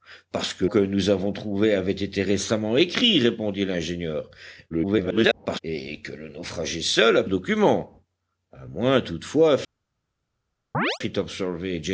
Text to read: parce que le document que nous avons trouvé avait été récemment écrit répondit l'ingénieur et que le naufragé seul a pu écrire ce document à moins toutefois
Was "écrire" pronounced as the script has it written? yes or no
no